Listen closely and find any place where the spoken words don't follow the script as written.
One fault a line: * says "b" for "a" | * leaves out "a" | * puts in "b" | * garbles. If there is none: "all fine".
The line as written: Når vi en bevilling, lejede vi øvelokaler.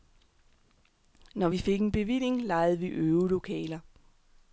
* puts in "fik"